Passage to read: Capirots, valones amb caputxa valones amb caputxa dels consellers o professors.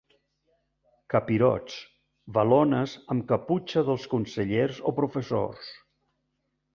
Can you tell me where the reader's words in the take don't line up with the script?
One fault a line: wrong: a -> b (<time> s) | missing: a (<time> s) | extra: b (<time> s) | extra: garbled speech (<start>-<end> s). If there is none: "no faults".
missing: valones amb caputxa (3.8 s)